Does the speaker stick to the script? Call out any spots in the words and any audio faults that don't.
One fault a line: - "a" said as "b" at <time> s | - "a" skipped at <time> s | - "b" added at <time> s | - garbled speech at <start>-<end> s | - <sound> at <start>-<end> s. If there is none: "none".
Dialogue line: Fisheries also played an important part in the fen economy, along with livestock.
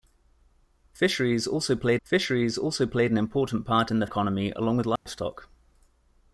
- "fisheries also played" added at 2.0 s
- "fen" skipped at 4.1 s
- dropout at 5.0-5.1 s